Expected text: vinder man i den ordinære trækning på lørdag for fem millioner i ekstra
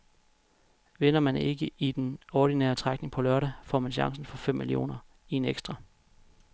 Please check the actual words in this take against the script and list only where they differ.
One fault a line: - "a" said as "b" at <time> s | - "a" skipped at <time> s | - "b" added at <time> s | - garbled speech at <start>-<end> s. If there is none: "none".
- "ikke" added at 1.4 s
- "får man chancen" added at 3.6 s
- "en" added at 5.4 s